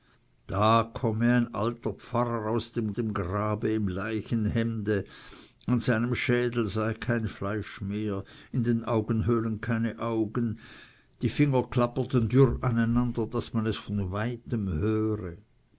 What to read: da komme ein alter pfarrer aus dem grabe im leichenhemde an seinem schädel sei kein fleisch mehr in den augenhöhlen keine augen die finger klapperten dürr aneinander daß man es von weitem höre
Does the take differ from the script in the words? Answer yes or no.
yes